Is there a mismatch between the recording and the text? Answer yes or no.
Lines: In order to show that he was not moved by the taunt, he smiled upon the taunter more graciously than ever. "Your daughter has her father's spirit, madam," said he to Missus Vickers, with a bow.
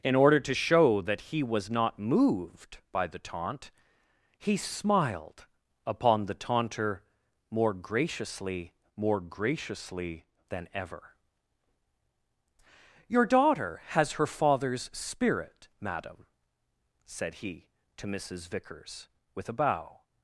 yes